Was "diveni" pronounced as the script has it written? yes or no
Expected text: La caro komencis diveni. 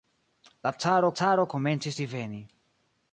yes